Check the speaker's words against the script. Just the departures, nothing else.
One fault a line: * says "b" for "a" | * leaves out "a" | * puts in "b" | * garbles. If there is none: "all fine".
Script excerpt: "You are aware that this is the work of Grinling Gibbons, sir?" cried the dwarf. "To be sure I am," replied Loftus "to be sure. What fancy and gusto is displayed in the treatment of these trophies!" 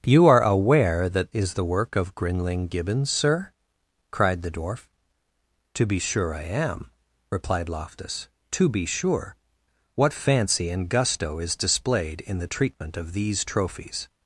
* leaves out "this"